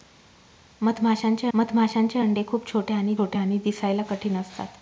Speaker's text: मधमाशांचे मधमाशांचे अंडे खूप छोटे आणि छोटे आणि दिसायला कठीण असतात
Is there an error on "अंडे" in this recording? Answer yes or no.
no